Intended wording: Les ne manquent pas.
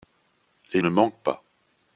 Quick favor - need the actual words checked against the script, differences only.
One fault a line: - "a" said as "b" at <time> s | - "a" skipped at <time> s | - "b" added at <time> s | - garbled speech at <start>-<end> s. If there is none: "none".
none